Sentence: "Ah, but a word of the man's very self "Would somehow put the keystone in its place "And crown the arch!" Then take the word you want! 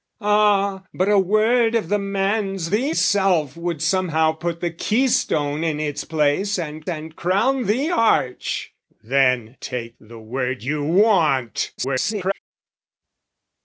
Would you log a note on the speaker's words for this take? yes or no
yes